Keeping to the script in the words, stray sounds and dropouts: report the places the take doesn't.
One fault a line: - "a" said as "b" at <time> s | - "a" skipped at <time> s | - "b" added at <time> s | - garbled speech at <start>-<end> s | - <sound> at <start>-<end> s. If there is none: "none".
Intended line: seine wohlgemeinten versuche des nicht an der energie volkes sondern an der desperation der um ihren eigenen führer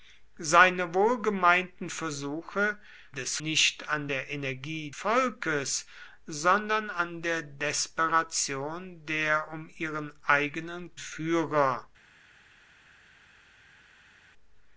none